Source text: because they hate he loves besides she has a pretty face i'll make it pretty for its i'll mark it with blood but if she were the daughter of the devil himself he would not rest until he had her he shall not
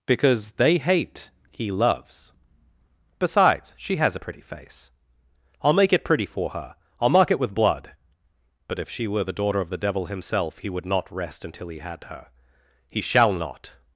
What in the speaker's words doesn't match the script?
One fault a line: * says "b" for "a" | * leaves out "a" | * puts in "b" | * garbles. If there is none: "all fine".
* says "her" for "its"